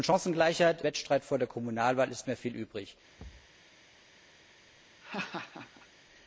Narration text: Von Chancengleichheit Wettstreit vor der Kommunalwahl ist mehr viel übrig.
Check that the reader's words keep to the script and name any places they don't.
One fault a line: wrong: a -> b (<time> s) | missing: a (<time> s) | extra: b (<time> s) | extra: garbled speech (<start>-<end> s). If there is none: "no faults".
no faults